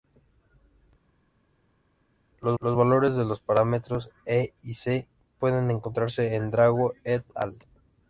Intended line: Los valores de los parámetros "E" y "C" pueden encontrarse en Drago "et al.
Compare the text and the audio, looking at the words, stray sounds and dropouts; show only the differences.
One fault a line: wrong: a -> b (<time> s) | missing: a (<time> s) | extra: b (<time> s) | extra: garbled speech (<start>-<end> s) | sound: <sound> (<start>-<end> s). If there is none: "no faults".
extra: los (2.6 s)